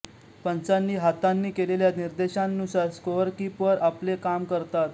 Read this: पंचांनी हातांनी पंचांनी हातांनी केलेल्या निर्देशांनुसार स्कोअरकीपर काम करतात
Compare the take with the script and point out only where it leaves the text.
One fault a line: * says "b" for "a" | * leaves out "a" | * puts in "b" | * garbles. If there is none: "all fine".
* leaves out "पंचांनी हातांनी"
* puts in "आपले"